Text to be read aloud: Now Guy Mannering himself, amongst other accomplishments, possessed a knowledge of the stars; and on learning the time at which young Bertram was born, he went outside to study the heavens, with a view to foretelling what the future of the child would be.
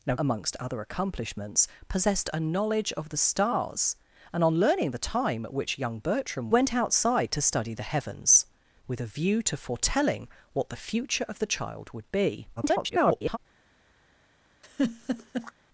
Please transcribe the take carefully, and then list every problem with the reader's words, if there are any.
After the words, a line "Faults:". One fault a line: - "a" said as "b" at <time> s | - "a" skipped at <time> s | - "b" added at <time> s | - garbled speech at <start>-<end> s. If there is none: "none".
Now Amongst other accomplishments, possessed a knowledge of the stars; and on learning the time at which young Bertram went outside to study the heavens, with a view to foretelling what the future of the child would be. [garbled]
Faults:
- "Guy Mannering himself" skipped at 0.1 s
- "was born he" skipped at 6.5 s
- garbled speech at 12.6-13.4 s